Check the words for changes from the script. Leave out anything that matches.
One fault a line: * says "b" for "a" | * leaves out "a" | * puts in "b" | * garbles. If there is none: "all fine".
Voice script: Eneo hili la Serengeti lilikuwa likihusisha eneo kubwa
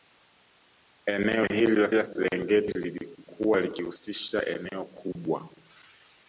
* puts in "la"